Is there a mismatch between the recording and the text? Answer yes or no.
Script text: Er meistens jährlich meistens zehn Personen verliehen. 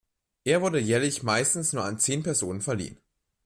yes